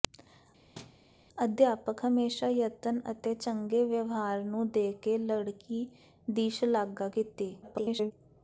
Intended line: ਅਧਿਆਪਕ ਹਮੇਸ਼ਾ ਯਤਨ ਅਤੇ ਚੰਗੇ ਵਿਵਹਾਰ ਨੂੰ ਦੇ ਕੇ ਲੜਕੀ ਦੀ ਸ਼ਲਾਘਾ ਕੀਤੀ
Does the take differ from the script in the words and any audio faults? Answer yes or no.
yes